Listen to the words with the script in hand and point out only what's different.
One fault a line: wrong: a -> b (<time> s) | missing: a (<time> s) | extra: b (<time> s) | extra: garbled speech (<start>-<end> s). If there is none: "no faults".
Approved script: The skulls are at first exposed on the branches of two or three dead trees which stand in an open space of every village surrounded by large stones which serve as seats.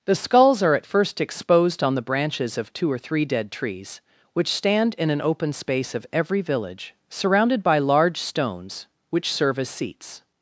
no faults